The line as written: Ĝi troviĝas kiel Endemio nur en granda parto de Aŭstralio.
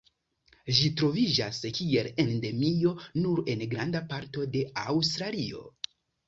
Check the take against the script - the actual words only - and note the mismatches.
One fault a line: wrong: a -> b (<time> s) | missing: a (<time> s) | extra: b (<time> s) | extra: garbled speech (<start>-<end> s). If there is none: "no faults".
no faults